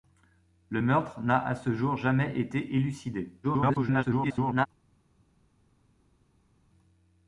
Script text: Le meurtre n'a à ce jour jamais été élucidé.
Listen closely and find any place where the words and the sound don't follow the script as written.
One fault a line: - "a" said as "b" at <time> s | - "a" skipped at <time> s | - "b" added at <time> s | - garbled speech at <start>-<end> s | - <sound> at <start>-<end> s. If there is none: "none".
- garbled speech at 3.4-4.7 s